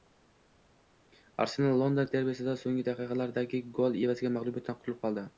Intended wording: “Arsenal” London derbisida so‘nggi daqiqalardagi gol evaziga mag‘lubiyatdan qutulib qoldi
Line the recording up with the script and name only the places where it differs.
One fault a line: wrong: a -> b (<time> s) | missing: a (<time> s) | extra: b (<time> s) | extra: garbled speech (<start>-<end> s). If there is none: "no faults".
no faults